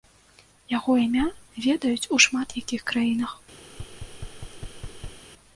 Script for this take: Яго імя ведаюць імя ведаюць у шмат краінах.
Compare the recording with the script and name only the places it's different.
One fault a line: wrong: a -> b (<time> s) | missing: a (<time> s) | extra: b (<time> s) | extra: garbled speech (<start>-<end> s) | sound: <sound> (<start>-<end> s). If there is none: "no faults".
missing: імя ведаюць (2.1 s)
extra: якіх (2.6 s)
sound: thud (3.7-5.2 s)